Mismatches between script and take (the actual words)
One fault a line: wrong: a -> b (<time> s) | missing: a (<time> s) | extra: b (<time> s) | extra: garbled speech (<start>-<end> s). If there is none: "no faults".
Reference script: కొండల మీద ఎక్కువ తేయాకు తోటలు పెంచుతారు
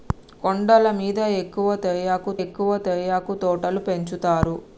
extra: ఎక్కువ తేయాకు (2.4 s)